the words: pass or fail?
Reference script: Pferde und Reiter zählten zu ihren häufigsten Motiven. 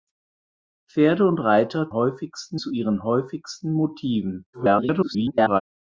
fail